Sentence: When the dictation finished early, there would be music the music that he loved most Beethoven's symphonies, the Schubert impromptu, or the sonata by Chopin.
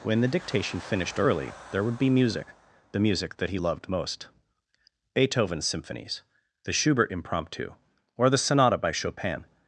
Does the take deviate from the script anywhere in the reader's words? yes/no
no